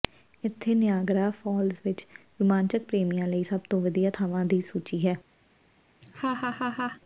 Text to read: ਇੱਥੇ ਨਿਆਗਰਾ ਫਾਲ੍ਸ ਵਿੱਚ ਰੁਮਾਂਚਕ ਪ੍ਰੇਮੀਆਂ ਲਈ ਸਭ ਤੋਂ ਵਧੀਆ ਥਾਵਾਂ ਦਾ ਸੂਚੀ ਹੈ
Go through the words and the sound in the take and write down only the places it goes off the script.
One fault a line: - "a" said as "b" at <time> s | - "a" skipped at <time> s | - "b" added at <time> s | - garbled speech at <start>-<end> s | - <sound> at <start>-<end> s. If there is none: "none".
- "ਦਾ" said as "ਦੀ" at 4.5 s
- laugh at 6.0-7.0 s